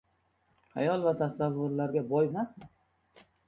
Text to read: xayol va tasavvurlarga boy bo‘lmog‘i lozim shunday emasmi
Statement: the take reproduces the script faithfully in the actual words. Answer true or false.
false